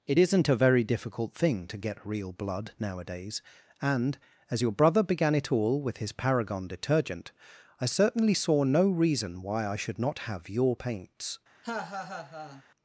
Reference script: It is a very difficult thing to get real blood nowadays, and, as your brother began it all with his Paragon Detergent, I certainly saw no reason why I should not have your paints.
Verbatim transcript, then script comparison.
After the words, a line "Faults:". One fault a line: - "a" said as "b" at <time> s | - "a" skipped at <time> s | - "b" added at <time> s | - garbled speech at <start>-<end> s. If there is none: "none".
It isn't a very difficult thing to get real blood nowadays, and, as your brother began it all with his Paragon Detergent, I certainly saw no reason why I should not have your paints.
Faults:
- "is" said as "isn't" at 0.2 s